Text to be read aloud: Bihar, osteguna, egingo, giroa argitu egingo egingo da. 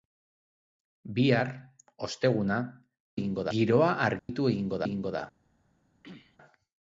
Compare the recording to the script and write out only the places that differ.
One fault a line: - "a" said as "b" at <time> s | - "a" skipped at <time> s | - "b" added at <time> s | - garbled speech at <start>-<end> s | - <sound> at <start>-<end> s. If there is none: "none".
- dropout at 4.2-4.3 s
- throat clearing at 6.0-6.4 s